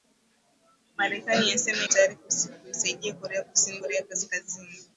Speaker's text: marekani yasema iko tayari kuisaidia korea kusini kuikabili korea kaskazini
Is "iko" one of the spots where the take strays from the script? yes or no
yes